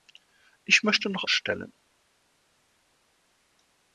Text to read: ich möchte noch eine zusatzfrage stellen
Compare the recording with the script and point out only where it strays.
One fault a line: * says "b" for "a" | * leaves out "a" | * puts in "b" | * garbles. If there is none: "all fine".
* leaves out "eine zusatzfrage"